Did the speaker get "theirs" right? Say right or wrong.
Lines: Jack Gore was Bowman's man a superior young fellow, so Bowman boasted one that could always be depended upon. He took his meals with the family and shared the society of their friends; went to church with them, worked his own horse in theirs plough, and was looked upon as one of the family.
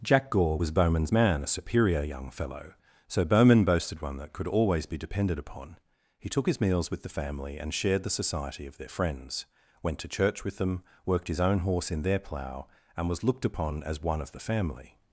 wrong